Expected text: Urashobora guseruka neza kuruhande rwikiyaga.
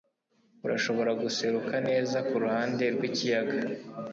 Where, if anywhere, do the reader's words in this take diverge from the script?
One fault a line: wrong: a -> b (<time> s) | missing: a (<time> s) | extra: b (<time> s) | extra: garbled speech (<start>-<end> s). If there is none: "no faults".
no faults